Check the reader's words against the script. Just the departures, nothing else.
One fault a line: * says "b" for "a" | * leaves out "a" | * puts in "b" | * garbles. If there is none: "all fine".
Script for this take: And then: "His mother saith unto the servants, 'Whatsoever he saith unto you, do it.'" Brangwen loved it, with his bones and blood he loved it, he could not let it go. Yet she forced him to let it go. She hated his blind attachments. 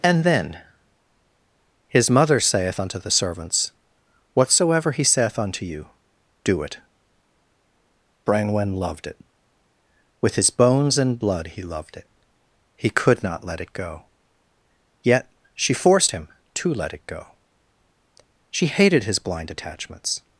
all fine